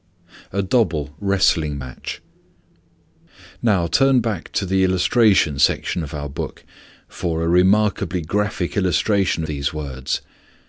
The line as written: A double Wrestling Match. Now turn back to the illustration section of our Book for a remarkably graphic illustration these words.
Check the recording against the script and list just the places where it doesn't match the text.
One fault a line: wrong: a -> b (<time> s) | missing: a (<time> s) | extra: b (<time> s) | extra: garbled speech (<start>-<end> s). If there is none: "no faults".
no faults